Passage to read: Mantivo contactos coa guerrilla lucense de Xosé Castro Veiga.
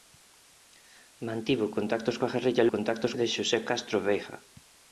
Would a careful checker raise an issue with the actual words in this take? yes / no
yes